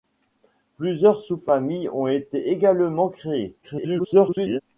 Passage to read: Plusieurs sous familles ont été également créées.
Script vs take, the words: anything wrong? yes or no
yes